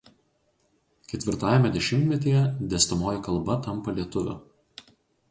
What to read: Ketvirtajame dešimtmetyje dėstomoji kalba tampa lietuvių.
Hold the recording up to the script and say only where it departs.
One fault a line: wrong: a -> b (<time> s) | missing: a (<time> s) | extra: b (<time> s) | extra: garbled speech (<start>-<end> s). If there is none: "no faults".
no faults